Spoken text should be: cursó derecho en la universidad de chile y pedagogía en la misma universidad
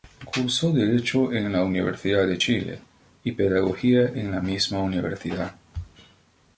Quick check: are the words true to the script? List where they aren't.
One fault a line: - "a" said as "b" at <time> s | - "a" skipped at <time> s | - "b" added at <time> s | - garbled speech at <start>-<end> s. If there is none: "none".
none